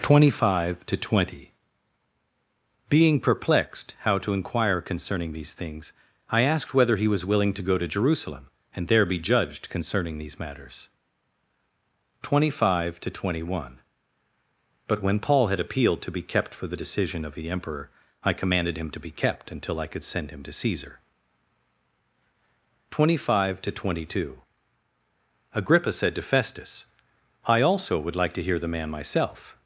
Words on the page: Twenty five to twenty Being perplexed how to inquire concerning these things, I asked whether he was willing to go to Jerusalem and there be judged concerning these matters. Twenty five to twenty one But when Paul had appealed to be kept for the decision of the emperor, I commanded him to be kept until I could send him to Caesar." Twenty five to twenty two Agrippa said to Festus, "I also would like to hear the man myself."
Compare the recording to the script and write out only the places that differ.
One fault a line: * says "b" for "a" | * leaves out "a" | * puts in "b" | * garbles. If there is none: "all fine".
all fine